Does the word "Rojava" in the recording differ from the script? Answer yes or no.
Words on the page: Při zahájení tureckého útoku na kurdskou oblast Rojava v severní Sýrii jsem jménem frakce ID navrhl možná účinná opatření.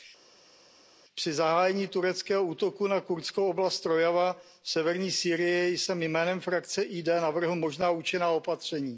no